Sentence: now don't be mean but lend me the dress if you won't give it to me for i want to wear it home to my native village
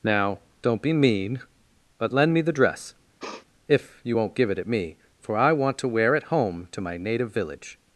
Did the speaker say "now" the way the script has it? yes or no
yes